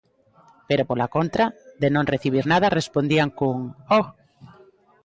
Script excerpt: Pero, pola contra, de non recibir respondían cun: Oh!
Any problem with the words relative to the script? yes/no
yes